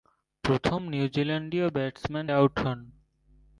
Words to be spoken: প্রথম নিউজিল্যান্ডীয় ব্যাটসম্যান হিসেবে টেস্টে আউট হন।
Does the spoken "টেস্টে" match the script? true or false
false